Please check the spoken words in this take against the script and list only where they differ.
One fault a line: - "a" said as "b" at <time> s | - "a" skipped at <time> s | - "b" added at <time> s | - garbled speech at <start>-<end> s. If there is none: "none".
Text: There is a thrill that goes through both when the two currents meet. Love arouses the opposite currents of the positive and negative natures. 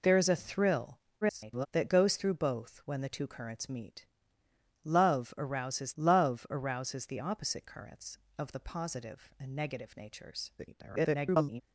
- garbled speech at 1.2-1.7 s
- "love arouses" added at 6.0 s
- garbled speech at 10.6-11.6 s